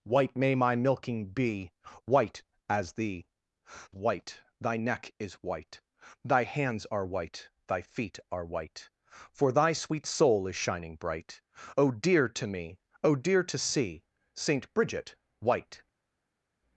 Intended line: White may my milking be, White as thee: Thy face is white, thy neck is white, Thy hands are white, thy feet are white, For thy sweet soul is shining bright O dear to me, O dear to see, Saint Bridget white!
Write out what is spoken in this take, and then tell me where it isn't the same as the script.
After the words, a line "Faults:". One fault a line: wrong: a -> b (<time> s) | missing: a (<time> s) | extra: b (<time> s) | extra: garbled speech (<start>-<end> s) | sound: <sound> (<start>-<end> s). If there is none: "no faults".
White may my milking be, White as thee: White, thy neck is white, Thy hands are white, thy feet are white, For thy sweet soul is shining bright O dear to me, O dear to see, Saint Bridget white!
Faults:
missing: Thy face is (3.3 s)